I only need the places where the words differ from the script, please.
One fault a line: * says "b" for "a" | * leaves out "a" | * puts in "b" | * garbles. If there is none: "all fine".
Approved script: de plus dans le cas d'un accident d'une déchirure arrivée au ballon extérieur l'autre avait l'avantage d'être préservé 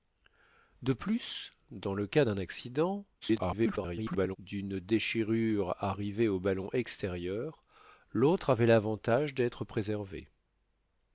* garbles